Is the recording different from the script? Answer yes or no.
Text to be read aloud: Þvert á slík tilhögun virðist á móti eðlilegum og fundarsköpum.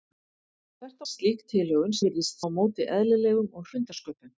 no